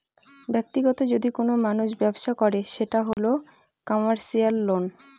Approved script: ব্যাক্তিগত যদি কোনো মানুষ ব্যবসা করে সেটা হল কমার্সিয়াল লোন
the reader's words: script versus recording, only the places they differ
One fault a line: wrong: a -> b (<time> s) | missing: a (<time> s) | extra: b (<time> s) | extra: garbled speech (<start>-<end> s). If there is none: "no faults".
no faults